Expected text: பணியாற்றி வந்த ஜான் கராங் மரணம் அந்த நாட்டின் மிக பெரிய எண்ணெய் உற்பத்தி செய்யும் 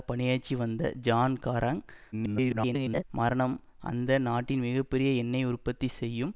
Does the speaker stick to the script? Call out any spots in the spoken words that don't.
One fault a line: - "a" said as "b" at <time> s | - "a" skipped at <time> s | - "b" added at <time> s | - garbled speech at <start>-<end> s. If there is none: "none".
- garbled speech at 2.1-3.0 s